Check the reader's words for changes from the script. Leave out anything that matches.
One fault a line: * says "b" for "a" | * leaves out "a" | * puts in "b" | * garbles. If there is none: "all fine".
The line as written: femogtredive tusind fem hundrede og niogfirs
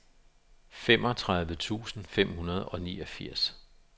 all fine